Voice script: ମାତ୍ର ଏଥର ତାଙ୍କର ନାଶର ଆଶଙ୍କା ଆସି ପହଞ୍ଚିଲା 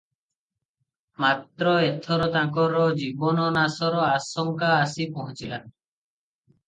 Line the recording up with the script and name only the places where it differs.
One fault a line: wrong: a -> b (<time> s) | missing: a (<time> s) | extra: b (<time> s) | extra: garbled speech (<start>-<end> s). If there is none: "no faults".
extra: ଜୀବନ (3.0 s)